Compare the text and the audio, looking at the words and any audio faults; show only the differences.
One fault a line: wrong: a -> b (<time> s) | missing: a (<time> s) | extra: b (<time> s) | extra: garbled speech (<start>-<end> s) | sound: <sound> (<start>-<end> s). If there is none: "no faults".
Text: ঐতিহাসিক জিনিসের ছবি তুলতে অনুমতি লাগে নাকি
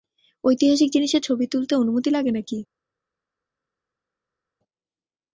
no faults